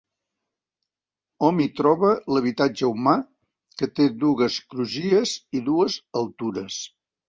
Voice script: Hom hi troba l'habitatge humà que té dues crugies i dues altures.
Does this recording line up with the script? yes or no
yes